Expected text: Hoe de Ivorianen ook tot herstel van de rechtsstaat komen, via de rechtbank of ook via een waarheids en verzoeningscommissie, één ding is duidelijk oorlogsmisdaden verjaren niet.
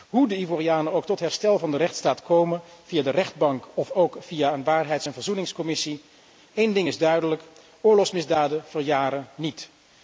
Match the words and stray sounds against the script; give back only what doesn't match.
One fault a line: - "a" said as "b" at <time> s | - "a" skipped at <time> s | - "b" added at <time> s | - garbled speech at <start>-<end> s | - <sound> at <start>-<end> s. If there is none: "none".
none